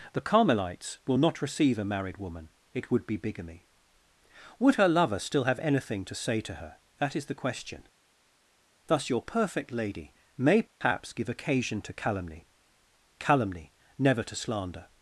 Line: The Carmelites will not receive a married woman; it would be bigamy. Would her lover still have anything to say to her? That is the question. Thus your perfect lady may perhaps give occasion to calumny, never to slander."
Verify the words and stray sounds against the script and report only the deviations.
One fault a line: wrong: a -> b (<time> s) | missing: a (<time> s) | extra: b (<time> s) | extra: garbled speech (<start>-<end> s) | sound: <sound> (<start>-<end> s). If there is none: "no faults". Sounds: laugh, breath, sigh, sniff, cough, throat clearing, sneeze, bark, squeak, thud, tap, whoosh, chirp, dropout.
sound: dropout (10.7-10.8 s)
extra: calumny (13.2 s)